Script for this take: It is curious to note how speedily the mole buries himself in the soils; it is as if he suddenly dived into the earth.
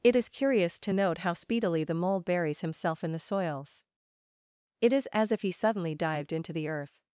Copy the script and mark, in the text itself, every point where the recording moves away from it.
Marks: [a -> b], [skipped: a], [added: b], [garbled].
It is curious to note how speedily the mole buries himself in the soils; it is as if he suddenly dived into the earth.